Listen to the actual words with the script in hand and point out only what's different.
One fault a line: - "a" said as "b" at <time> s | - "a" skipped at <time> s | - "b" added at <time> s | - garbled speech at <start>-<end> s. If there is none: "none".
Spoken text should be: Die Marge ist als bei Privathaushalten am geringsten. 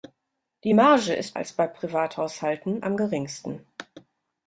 none